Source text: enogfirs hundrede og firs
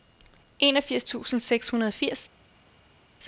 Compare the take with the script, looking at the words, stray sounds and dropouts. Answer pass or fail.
fail